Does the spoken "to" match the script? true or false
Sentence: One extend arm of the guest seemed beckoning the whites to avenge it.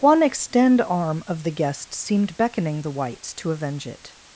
true